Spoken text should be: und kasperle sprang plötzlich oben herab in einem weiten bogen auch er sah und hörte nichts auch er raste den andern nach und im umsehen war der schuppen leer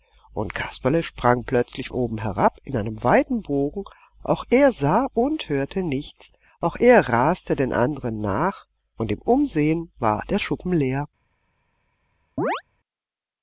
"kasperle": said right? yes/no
yes